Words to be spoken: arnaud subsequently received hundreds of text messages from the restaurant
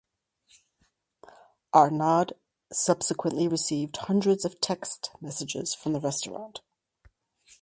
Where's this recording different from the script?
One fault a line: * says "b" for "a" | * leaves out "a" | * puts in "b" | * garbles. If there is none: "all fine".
all fine